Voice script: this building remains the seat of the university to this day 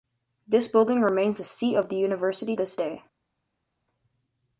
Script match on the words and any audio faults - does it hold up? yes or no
no